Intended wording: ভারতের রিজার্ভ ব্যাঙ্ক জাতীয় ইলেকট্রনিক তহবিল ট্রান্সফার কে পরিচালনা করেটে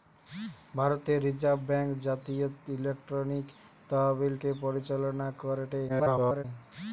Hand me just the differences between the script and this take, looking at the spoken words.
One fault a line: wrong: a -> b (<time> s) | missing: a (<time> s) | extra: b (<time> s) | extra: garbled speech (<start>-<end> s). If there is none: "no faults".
missing: ট্রান্সফার (4.3 s)
extra: garbled speech (5.9-6.4 s)